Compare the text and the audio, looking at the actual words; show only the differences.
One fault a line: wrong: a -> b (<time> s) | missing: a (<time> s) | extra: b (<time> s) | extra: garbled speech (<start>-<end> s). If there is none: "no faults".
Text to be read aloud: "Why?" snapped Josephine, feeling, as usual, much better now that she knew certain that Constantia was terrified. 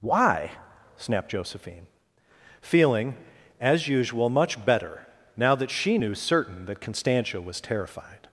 no faults